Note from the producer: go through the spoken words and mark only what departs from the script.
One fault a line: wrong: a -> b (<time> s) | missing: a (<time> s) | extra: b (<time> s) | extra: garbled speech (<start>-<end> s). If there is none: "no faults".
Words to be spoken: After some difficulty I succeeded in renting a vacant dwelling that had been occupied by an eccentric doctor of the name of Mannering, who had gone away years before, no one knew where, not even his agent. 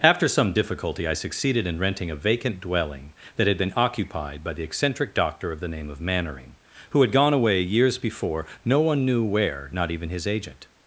wrong: an -> the (4.5 s)